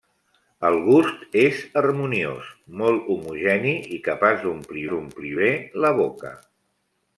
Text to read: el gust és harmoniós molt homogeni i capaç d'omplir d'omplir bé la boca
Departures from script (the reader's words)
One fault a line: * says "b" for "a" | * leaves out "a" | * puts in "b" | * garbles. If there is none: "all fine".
all fine